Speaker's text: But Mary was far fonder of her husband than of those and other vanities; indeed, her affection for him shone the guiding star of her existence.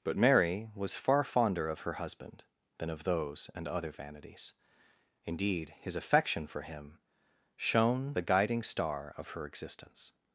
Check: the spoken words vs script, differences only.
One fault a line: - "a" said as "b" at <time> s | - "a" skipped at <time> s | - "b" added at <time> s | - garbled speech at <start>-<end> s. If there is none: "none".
- "her" said as "his" at 5.8 s